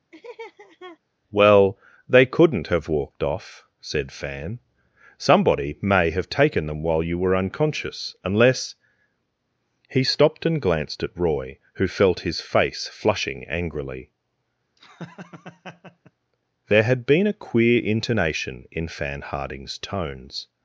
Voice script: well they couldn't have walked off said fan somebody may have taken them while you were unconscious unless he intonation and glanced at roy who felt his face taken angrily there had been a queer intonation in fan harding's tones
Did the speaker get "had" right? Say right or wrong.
right